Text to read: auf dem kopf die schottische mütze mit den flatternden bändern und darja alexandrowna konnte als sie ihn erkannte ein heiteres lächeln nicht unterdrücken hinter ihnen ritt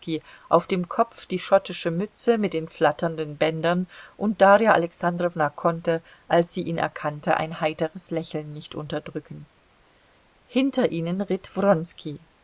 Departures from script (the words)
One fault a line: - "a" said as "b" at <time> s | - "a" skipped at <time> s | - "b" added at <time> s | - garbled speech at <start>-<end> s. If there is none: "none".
none